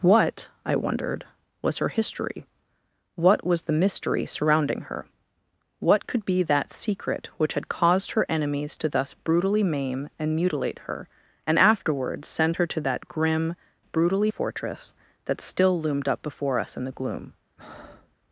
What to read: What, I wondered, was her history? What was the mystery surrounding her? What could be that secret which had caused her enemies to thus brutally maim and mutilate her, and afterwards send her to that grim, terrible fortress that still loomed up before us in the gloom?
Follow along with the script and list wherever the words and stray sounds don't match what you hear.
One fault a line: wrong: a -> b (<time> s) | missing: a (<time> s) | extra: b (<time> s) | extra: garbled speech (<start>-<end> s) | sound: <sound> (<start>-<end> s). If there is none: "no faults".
wrong: terrible -> brutally (13.8 s)
sound: breath (17.6-18.2 s)